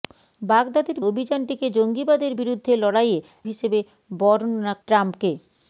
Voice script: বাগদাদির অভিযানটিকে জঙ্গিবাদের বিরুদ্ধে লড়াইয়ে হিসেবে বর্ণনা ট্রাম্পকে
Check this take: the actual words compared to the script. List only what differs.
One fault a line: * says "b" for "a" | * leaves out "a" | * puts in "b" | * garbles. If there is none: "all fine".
all fine